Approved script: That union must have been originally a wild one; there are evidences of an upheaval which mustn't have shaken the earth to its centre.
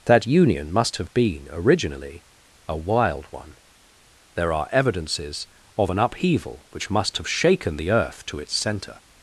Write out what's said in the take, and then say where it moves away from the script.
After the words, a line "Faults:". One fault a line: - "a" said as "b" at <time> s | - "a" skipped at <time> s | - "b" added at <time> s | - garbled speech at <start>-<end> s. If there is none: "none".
That union must have been originally a wild one; there are evidences of an upheaval which must have shaken the earth to its centre.
Faults:
- "mustn't" said as "must" at 6.9 s